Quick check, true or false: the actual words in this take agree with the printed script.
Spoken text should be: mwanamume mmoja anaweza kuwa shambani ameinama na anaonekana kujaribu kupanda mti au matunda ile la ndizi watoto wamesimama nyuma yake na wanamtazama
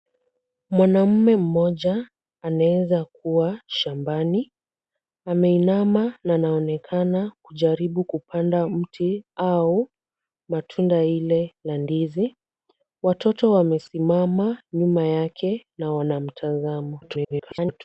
false